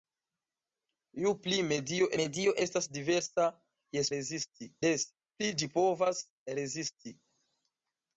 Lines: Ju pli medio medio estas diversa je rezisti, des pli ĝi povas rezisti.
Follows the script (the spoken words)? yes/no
yes